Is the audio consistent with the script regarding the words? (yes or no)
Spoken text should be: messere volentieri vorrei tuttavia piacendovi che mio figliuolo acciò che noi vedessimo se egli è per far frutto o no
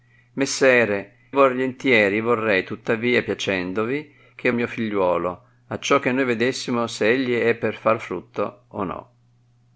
yes